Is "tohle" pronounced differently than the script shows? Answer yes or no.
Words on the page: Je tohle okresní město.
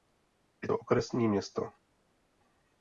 yes